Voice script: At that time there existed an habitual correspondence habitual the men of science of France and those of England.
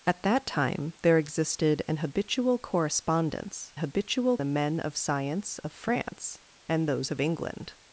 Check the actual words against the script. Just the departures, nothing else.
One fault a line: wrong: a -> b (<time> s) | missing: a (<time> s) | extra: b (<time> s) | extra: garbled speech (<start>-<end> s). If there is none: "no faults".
no faults